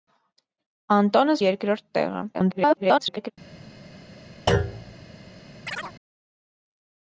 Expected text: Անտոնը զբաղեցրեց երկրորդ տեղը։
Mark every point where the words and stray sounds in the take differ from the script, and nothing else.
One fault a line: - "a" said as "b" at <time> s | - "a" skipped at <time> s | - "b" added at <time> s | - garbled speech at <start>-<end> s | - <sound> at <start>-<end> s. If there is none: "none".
- "զբաղեցրեց" skipped at 1.4 s
- garbled speech at 2.3-3.3 s
- thud at 4.5-4.9 s
- chirp at 5.7-5.9 s